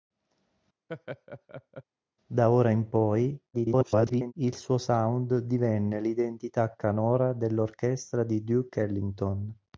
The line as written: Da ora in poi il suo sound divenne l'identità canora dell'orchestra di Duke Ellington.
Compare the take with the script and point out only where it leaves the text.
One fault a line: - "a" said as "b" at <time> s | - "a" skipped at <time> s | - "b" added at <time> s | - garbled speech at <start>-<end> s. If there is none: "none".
- garbled speech at 3.5-4.3 s